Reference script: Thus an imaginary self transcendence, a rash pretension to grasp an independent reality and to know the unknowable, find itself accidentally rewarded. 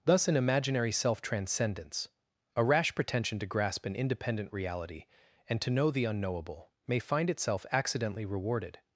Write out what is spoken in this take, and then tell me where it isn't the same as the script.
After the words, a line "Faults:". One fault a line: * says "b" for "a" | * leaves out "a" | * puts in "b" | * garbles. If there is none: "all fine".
Thus an imaginary self transcendence, a rash pretension to grasp an independent reality and to know the unknowable, may find itself accidentally rewarded.
Faults:
* puts in "may"